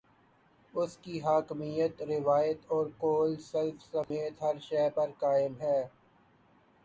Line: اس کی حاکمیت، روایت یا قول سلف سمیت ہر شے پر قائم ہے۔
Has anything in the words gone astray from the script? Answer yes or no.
yes